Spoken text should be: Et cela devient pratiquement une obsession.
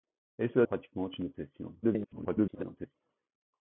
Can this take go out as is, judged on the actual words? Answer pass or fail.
fail